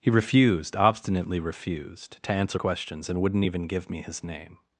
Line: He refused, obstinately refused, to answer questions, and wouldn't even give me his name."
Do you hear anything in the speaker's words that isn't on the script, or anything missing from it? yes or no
no